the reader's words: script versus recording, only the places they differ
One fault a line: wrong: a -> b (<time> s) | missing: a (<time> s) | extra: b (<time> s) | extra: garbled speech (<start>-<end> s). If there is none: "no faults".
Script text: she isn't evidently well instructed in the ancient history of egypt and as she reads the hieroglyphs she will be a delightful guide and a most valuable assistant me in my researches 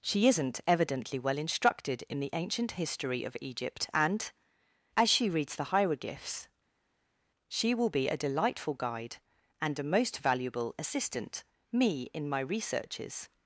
no faults